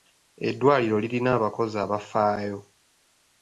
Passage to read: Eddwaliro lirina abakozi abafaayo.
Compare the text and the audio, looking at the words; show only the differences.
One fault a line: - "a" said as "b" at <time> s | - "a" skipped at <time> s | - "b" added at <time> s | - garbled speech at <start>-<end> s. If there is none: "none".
none